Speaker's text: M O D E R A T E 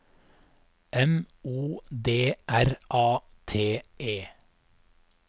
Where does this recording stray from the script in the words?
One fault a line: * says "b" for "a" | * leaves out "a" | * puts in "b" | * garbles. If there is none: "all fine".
* leaves out "E"